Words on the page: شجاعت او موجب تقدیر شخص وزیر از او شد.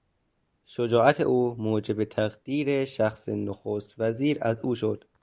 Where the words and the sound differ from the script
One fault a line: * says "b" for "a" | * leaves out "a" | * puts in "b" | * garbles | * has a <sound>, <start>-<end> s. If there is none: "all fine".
* puts in "نخست"